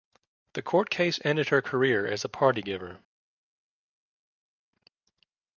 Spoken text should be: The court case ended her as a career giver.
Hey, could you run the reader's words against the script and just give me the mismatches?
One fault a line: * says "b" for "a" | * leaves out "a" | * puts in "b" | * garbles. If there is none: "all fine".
* puts in "career"
* says "party" for "career"